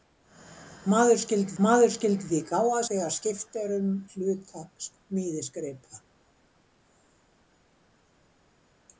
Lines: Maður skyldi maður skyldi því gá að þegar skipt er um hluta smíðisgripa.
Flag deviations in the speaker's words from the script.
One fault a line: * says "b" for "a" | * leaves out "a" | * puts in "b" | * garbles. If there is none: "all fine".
all fine